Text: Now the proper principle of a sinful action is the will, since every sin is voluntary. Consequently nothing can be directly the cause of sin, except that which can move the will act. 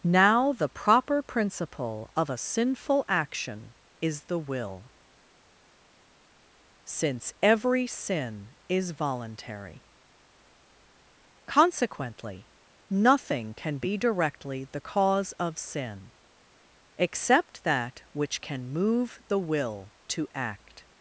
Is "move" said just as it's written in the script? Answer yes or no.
yes